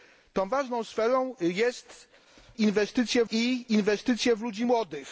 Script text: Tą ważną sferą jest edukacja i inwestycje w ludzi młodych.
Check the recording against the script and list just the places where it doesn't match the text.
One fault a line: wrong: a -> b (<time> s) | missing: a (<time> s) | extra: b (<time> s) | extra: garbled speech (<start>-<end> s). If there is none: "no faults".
wrong: edukacja -> inwestycje (2.6 s)